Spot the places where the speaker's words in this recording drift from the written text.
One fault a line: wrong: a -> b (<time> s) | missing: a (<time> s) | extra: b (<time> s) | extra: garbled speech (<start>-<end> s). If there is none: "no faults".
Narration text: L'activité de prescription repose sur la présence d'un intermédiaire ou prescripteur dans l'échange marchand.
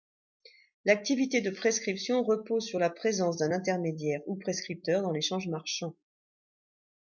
no faults